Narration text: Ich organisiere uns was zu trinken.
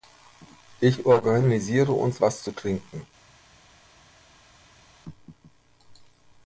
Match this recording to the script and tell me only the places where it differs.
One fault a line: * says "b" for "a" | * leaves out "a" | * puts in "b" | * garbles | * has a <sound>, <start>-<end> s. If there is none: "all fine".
all fine